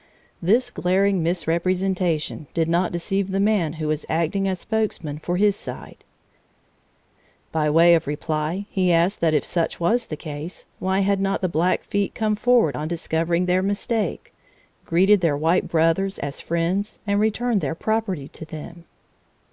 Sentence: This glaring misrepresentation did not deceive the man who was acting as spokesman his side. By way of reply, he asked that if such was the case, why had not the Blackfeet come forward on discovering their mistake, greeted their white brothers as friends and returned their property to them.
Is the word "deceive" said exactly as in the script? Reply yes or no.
yes